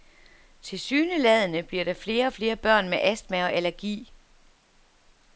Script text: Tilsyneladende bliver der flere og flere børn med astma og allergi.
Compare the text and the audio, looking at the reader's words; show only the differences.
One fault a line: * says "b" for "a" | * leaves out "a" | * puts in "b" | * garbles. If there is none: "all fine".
all fine